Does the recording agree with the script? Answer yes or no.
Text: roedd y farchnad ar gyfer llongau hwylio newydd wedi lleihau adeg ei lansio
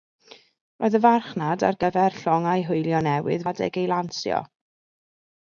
no